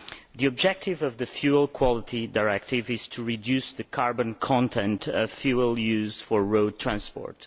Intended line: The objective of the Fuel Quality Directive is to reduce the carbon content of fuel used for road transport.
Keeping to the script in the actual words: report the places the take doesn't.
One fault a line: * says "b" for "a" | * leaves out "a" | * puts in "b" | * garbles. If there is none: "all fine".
all fine